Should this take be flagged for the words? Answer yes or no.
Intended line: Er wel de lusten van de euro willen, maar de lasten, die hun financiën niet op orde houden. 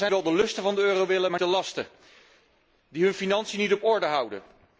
no